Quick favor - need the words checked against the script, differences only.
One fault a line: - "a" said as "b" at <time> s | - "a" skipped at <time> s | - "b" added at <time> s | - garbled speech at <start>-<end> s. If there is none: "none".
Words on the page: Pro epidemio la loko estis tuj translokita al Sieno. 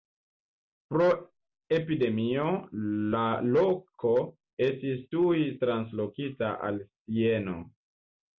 none